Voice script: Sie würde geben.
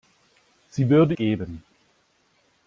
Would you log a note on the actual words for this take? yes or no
no